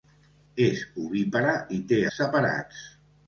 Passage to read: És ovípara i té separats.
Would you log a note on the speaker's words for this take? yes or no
no